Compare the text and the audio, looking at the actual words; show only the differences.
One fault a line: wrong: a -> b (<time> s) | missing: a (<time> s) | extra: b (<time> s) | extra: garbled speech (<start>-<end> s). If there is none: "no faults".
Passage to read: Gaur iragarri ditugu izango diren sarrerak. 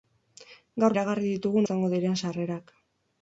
no faults